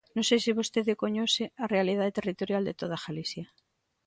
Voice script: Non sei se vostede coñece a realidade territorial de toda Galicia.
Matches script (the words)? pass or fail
pass